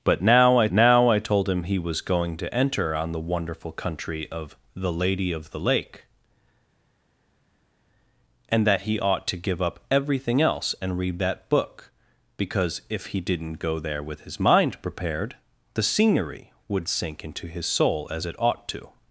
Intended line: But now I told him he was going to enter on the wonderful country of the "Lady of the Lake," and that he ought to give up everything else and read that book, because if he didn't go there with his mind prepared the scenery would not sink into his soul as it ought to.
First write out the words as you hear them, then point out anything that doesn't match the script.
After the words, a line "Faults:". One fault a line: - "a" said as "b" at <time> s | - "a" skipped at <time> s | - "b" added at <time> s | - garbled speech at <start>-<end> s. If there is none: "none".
But now I now I told him he was going to enter on the wonderful country of the "Lady of the Lake," and that he ought to give up everything else and read that book, because if he didn't go there with his mind prepared the scenery would sink into his soul as it ought to.
Faults:
- "now I" added at 0.7 s
- "not" skipped at 16.9 s